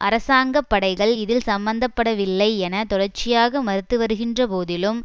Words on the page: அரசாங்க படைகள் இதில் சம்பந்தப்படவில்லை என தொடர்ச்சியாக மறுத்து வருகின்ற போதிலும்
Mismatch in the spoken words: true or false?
false